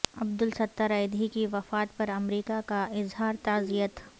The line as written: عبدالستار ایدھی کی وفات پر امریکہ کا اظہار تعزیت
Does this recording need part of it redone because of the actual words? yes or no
no